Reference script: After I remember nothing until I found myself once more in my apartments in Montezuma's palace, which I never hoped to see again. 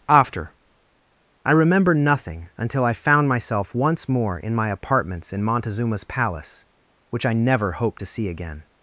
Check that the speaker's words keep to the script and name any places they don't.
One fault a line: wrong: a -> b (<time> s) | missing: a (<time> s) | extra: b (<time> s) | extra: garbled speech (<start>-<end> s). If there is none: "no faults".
no faults